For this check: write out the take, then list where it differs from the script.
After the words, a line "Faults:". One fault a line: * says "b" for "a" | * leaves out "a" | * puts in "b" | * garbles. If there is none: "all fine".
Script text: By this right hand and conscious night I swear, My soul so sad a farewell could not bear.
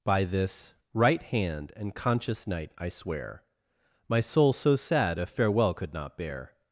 By this right hand and conscious night I swear, My soul so sad a farewell could not bear.
Faults:
all fine